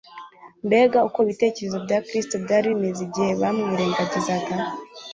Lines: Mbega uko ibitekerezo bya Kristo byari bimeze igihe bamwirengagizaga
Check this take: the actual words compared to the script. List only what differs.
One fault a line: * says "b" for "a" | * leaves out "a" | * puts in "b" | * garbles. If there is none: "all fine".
all fine